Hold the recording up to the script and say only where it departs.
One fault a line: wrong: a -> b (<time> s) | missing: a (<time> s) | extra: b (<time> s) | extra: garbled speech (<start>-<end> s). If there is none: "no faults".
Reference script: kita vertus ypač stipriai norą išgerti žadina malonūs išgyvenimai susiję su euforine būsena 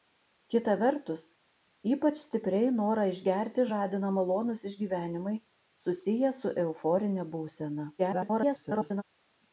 extra: garbled speech (8.0-9.0 s)